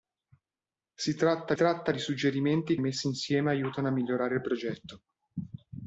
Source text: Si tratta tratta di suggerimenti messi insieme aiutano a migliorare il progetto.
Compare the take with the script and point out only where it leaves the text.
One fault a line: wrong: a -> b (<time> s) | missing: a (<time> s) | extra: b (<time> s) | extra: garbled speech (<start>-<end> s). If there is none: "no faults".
no faults